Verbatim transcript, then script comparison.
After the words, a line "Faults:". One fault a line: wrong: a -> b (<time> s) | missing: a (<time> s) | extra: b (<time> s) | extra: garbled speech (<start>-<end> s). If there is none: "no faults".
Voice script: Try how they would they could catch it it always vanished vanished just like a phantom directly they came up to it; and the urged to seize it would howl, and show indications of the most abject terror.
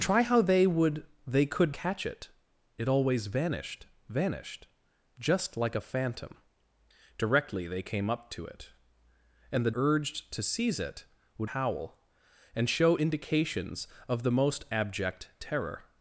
Try how they would they could catch it it always vanished vanished just like a phantom directly they came up to it; and the urged to seize it would howl, and show indications of the most abject terror.
Faults:
no faults